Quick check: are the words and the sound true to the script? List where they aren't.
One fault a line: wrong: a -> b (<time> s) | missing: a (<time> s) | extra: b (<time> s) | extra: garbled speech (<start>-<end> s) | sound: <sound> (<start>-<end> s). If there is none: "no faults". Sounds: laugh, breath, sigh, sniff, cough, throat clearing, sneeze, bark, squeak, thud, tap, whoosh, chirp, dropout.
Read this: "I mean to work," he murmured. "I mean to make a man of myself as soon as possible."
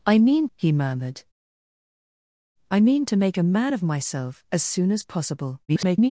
missing: to work (0.5 s)
extra: garbled speech (5.7-6.1 s)